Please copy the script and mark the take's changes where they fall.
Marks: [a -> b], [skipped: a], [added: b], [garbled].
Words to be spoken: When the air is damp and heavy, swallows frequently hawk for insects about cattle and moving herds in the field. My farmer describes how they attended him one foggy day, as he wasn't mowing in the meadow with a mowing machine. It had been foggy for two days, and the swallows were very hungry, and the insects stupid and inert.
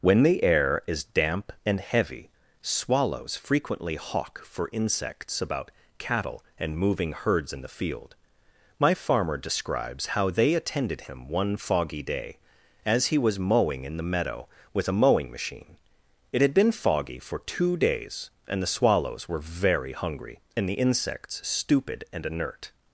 When the air is damp and heavy, swallows frequently hawk for insects about cattle and moving herds in the field. My farmer describes how they attended him one foggy day, as he [wasn't -> was] mowing in the meadow with a mowing machine. It had been foggy for two days, and the swallows were very hungry, and the insects stupid and inert.